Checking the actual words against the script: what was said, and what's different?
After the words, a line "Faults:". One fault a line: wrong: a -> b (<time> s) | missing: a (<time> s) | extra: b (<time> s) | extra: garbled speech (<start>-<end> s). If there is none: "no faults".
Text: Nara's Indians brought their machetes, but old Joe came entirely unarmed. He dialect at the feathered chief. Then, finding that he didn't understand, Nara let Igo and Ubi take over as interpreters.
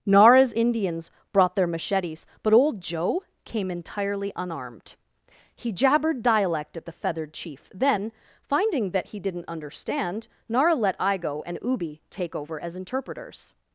Nara's Indians brought their machetes, but old Joe came entirely unarmed. He jabbered dialect at the feathered chief. Then, finding that he didn't understand, Nara let Igo and Ubi take over as interpreters.
Faults:
extra: jabbered (5.7 s)